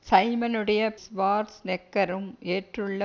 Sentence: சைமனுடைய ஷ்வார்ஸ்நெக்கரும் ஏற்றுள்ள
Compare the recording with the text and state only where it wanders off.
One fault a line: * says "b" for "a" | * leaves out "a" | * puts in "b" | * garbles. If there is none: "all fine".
all fine